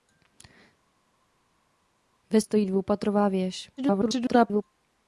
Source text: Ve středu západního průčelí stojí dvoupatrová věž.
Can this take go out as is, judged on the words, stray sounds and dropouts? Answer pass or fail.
fail